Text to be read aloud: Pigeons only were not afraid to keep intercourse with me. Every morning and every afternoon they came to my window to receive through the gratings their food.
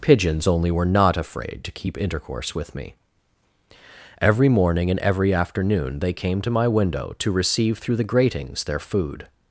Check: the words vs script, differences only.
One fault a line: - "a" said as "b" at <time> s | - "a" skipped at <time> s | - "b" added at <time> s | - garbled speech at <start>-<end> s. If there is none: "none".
none